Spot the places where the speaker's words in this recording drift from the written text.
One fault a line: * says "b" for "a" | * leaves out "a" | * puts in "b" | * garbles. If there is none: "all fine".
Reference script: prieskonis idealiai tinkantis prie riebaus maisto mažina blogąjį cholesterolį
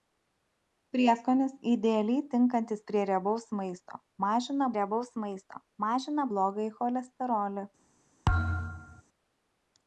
* puts in "riebaus maisto mažina"